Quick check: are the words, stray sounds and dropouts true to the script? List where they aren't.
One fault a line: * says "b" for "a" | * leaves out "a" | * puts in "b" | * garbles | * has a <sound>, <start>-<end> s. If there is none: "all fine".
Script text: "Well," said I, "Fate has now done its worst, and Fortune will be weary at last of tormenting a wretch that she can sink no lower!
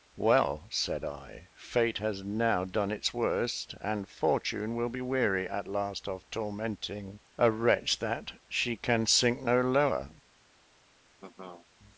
* has a laugh, 11.2-11.7 s